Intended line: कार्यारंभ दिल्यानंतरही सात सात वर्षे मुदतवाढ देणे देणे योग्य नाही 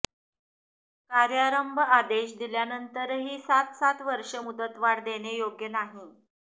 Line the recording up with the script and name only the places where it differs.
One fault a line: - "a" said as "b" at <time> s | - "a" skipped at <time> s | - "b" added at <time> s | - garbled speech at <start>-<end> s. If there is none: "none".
- "आदेश" added at 1.9 s
- "देणे" skipped at 5.4 s